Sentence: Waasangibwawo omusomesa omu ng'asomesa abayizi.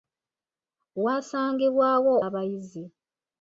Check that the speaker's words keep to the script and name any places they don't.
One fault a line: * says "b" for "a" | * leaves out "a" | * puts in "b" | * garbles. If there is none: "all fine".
* leaves out "omusomesa omu ng'asomesa"